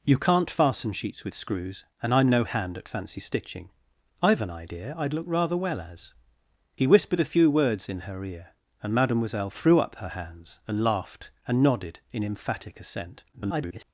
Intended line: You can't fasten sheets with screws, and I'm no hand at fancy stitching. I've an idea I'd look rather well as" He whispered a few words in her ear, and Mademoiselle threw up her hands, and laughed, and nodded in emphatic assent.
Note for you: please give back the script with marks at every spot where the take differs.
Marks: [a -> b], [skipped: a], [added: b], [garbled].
You can't fasten sheets with screws, and I'm no hand at fancy stitching. I've an idea I'd look rather well as" He whispered a few words in her ear, and Mademoiselle threw up her hands, and laughed, and nodded in emphatic assent. [garbled]